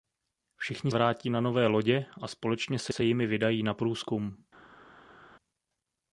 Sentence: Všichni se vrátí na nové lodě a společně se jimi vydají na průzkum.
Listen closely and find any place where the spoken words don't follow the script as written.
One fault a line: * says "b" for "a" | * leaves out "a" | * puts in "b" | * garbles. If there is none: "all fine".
* leaves out "se"
* puts in "se"